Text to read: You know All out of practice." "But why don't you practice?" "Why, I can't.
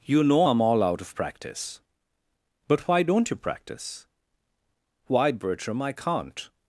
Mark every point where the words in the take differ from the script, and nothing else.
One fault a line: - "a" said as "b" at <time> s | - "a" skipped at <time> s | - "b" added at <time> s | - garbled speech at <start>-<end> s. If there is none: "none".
- "I'm" added at 0.4 s
- "Bertram" added at 5.3 s